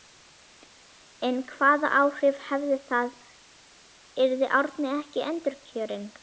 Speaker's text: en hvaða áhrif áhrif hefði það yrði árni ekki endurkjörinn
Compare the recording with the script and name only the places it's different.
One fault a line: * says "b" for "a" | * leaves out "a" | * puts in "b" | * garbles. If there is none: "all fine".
* leaves out "áhrif"